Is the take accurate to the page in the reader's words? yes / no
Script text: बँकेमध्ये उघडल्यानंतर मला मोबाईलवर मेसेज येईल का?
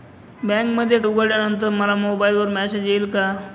yes